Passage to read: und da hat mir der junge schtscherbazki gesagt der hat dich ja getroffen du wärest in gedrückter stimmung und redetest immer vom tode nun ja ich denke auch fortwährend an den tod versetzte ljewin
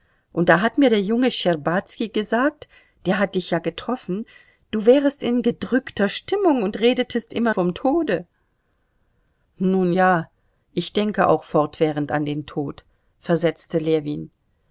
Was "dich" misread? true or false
false